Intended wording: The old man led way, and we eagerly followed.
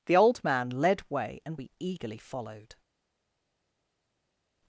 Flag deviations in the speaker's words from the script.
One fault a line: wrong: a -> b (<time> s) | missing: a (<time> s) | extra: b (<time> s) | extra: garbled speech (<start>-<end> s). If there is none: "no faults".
no faults